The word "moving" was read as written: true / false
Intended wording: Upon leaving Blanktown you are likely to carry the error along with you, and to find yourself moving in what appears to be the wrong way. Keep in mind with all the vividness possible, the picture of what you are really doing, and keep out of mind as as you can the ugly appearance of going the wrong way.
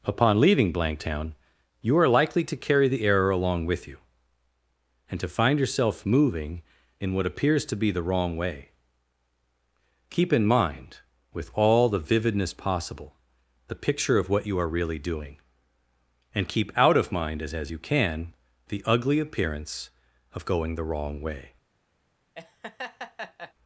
true